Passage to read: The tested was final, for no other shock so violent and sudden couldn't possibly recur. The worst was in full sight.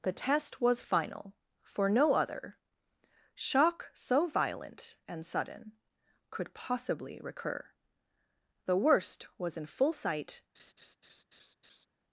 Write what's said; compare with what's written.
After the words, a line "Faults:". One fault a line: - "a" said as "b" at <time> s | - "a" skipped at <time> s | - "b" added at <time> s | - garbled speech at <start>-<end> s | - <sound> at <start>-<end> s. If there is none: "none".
The test was final, for no other shock so violent and sudden could possibly recur. The worst was in full sight.
Faults:
- "tested" said as "test" at 0.1 s
- "couldn't" said as "could" at 6.3 s
- laugh at 10.5-11.9 s